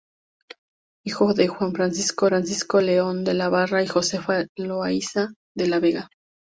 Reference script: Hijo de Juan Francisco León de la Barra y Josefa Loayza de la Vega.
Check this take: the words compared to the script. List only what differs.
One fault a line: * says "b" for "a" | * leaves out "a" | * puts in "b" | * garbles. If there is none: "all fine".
* puts in "Francisco"